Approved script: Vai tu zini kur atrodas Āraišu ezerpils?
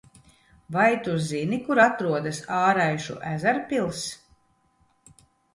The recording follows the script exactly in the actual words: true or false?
true